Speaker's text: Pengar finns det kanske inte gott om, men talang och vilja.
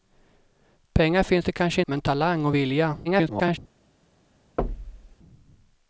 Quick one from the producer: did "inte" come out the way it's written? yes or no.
no